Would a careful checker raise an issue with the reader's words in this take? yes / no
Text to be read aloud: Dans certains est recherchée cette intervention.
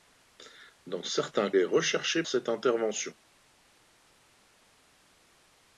no